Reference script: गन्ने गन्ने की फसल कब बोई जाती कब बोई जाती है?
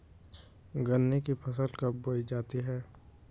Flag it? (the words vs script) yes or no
yes